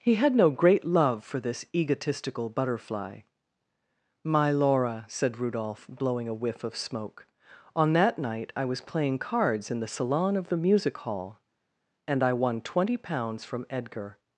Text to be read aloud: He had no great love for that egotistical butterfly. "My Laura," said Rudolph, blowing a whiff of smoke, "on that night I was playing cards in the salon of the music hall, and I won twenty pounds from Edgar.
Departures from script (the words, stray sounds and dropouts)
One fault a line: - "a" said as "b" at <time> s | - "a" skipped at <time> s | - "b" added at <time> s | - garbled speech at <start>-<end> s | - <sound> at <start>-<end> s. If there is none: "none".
- "that" said as "this" at 1.4 s